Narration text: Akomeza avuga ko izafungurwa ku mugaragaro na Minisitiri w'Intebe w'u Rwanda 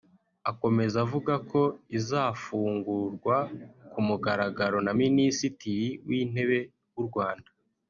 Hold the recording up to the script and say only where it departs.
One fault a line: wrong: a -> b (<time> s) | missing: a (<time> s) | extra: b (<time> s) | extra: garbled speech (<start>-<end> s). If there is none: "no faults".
no faults